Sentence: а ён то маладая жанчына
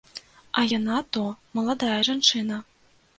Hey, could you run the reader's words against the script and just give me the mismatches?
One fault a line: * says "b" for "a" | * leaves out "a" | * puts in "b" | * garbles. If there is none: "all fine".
* says "яна" for "ён"